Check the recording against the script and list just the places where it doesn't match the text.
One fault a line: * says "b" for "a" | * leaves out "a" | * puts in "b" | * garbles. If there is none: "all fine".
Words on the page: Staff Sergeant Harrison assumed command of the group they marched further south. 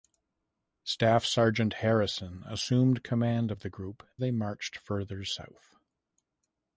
all fine